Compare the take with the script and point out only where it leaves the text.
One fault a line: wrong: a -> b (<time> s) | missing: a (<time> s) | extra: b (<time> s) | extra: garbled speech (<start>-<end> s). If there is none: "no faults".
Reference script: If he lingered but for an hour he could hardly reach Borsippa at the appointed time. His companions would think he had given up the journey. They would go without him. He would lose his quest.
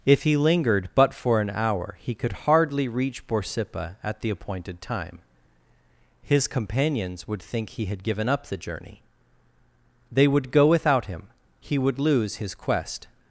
no faults